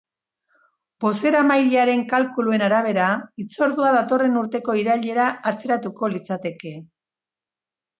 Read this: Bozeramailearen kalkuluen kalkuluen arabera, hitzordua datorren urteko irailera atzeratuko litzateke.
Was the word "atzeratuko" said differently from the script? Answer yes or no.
no